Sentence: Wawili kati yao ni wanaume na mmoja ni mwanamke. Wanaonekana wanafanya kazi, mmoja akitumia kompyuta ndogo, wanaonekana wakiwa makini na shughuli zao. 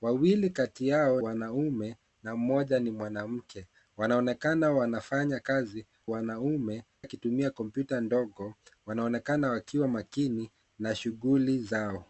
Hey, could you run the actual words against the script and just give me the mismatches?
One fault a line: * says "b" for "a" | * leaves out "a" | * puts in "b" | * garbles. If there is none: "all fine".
* leaves out "ni"
* says "wanaume" for "mmoja"